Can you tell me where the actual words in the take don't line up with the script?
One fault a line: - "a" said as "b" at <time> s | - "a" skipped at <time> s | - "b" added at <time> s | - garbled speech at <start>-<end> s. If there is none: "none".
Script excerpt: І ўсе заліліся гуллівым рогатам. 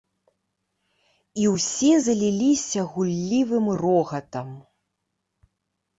none